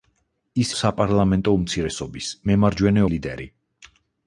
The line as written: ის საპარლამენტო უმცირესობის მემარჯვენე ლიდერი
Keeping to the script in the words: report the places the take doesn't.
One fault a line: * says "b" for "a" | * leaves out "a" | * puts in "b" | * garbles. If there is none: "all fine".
all fine